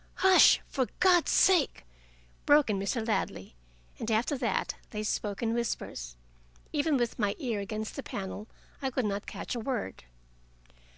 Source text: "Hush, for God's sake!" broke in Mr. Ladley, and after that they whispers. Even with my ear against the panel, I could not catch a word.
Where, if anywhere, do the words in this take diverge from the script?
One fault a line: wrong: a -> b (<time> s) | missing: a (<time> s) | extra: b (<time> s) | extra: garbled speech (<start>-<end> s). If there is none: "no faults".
extra: spoke in (5.0 s)